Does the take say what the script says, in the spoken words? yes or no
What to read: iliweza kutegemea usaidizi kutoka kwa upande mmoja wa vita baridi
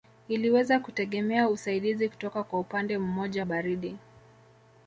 no